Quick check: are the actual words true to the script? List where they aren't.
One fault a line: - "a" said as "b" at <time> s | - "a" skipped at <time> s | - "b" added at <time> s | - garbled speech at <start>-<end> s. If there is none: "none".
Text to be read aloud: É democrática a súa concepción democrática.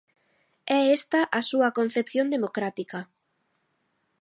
- "democrática" said as "esta" at 1.0 s